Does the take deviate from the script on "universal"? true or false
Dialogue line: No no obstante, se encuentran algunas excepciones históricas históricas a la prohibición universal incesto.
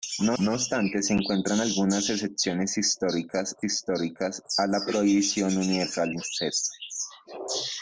false